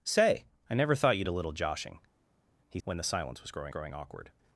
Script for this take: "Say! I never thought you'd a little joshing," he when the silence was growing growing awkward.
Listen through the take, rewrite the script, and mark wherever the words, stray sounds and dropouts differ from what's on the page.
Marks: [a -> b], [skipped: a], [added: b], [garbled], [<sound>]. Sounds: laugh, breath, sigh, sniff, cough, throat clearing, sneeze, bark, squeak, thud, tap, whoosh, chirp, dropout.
"Say! I never thought you'd a little joshing," he when the silence was growing growing awkward.